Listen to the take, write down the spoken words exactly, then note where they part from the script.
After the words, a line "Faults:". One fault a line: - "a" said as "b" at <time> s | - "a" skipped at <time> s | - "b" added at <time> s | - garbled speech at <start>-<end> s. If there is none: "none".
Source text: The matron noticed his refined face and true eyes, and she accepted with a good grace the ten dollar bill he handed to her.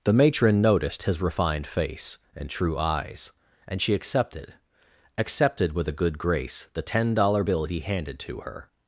The matron noticed his refined face and true eyes, and she accepted accepted with a good grace the ten dollar bill he handed to her.
Faults:
- "accepted" added at 5.2 s